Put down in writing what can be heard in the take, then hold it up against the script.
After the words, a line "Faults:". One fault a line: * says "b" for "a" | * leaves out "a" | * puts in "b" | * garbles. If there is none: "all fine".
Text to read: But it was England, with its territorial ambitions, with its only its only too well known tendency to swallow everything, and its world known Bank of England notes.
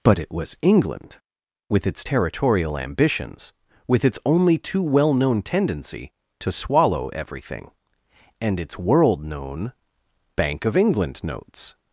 But it was England, with its territorial ambitions, with its only too well known tendency to swallow everything, and its world known Bank of England notes.
Faults:
* leaves out "its only"